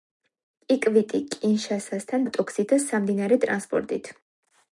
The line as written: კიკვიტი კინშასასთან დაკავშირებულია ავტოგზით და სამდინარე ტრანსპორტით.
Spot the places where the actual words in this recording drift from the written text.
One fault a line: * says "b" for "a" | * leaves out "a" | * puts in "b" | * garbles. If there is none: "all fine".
* leaves out "დაკავშირებულია"